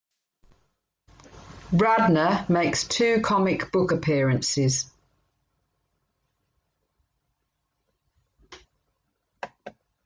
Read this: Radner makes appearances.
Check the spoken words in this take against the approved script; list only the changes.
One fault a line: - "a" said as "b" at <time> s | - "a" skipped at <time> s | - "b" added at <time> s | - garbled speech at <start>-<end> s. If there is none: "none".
- "two comic book" added at 2.9 s